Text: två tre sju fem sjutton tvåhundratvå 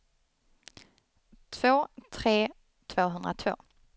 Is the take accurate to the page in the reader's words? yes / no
no